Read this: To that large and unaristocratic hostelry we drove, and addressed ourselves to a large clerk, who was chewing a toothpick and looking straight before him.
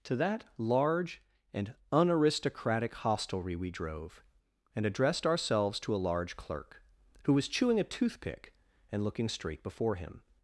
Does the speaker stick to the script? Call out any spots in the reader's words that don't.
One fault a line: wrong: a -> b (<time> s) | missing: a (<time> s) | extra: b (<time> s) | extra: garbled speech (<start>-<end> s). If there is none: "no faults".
no faults